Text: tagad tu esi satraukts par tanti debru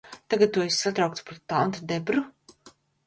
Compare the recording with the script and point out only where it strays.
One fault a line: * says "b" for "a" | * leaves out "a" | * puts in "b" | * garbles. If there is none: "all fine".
all fine